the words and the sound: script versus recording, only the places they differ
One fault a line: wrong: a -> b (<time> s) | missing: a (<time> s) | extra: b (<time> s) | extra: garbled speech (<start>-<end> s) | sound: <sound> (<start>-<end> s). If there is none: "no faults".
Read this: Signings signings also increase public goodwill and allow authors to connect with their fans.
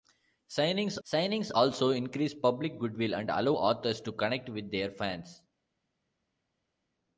no faults